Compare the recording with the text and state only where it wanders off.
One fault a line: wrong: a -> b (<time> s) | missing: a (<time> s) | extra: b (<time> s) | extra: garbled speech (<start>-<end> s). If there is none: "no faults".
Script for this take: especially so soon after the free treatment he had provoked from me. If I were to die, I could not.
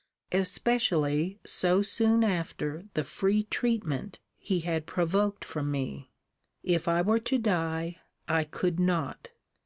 no faults